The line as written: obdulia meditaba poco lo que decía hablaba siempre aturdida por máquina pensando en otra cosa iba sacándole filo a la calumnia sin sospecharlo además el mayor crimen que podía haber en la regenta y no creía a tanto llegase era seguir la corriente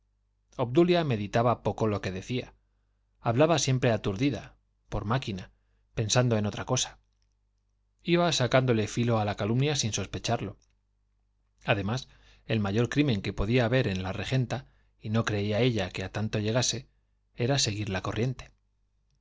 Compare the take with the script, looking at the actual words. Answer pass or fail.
fail